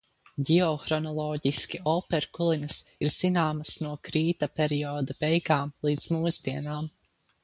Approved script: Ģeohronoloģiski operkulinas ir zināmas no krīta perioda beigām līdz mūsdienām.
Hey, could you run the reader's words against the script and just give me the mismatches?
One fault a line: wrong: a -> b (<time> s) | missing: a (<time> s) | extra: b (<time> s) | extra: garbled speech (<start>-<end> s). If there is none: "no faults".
no faults